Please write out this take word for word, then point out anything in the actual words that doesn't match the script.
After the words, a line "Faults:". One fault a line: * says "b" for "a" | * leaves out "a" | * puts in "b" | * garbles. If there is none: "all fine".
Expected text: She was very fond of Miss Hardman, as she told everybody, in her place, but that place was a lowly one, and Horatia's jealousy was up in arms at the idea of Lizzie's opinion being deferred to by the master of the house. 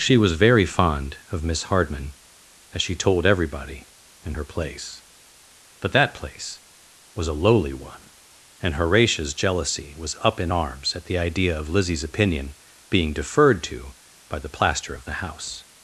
She was very fond of Miss Hardman, as she told everybody, in her place, but that place was a lowly one, and Horatia's jealousy was up in arms at the idea of Lizzie's opinion being deferred to by the plaster of the house.
Faults:
* says "plaster" for "master"